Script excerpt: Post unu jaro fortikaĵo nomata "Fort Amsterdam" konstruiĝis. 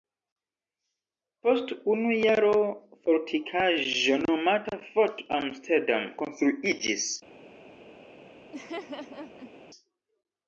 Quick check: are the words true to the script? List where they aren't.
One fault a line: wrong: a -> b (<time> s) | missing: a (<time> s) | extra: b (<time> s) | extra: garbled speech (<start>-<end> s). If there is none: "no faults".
no faults